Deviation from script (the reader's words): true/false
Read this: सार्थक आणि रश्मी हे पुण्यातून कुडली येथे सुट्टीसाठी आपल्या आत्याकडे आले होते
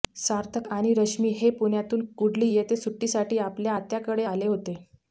false